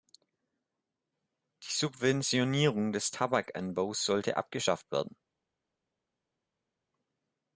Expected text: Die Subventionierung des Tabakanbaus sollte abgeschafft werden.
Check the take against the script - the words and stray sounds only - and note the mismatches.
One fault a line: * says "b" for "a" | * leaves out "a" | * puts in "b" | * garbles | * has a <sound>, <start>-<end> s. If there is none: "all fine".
all fine